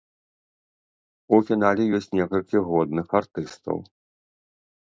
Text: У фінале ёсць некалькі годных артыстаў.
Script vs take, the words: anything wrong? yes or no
no